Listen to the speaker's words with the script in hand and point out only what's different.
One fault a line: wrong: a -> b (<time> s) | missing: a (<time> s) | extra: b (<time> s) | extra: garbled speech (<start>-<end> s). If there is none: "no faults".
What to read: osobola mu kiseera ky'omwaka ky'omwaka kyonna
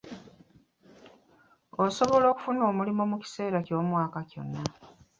extra: okufuna omulimu (2.3 s)
missing: ky'omwaka (4.2 s)